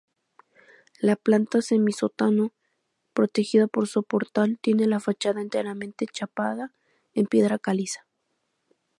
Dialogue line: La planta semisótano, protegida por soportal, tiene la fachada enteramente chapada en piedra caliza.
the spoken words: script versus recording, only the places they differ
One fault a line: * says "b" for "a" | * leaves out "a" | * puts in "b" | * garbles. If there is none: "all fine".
all fine